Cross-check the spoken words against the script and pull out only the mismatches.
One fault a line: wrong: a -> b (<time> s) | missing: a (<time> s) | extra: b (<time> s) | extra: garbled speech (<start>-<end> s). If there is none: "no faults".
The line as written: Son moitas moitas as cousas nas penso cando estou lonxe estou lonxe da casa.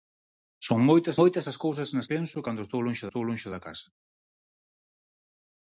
no faults